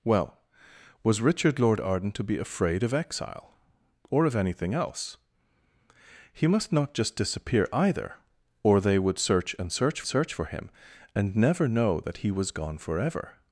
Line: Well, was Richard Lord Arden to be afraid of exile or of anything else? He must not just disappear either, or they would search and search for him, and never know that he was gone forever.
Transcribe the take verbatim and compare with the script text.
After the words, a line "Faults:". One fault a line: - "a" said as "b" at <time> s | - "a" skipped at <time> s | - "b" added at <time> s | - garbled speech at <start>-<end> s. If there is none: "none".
Well, was Richard Lord Arden to be afraid of exile or of anything else? He must not just disappear either, or they would search and search search for him, and never know that he was gone forever.
Faults:
- "search" added at 10.0 s